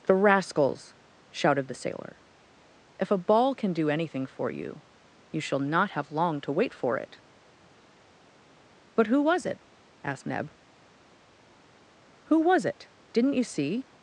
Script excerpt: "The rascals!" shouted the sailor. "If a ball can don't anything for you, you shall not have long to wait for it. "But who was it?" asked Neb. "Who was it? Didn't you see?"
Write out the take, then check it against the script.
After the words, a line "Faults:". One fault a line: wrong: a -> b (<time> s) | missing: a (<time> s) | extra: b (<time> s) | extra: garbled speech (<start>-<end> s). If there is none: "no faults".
"The rascals!" shouted the sailor. "If a ball can do anything for you, you shall not have long to wait for it. "But who was it?" asked Neb. "Who was it? Didn't you see?"
Faults:
wrong: don't -> do (3.7 s)